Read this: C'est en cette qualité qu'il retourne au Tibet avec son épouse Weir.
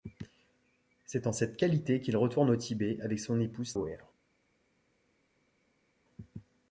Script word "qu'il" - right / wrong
right